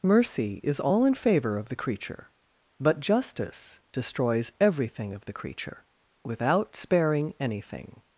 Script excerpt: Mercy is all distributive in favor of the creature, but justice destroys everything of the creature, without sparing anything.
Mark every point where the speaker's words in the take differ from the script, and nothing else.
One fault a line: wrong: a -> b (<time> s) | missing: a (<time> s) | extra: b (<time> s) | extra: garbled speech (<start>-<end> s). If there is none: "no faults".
missing: distributive (1.1 s)